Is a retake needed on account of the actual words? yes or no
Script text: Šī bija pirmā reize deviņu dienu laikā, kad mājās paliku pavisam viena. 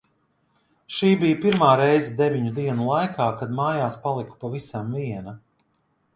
no